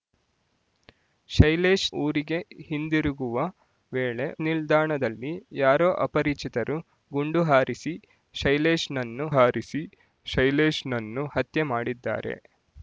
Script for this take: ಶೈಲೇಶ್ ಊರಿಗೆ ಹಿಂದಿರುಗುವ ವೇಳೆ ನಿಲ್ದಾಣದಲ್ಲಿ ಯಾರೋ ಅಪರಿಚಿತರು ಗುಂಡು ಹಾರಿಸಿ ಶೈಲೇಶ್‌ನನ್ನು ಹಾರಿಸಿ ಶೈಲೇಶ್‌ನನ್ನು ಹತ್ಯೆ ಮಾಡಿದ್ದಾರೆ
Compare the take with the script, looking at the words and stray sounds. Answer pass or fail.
pass